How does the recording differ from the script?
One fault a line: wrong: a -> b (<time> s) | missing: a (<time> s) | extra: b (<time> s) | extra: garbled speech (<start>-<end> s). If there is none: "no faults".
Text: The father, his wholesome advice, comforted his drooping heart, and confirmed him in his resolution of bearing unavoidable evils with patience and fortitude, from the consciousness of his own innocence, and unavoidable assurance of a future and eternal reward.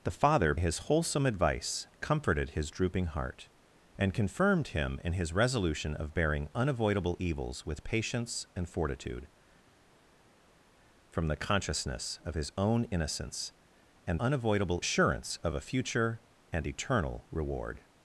no faults